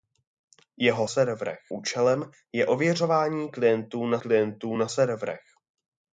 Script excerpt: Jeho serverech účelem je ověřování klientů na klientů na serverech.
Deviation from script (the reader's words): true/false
false